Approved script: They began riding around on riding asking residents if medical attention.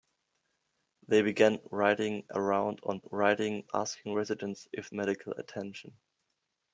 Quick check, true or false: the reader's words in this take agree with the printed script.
true